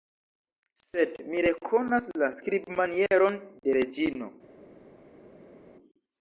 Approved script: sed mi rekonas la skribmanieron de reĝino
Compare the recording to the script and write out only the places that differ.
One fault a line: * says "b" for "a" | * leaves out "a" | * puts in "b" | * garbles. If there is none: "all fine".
all fine